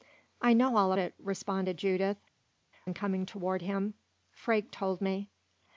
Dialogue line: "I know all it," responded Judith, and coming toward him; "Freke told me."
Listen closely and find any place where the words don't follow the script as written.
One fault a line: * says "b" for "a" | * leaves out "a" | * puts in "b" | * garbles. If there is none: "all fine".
all fine